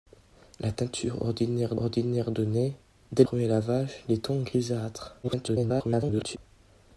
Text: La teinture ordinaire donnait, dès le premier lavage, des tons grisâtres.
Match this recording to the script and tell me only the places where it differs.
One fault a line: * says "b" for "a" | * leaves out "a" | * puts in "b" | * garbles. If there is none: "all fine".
* puts in "ordinaire"
* leaves out "le"
* garbles